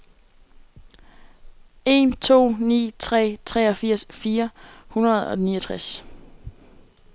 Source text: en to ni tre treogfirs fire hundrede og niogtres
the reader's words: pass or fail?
pass